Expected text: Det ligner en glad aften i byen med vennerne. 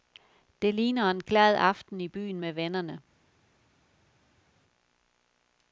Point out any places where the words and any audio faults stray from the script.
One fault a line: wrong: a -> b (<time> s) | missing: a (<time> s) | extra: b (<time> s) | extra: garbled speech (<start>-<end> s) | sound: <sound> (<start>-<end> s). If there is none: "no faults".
no faults